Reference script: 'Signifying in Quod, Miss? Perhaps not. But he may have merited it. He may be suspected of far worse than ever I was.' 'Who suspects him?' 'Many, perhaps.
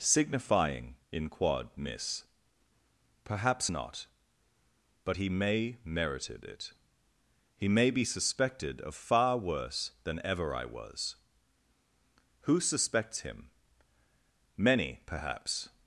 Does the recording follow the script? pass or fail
fail